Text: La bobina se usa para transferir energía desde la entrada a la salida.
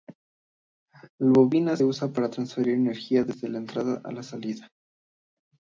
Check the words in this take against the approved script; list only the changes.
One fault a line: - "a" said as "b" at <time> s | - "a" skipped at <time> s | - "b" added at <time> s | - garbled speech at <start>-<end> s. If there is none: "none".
- "se" skipped at 1.8 s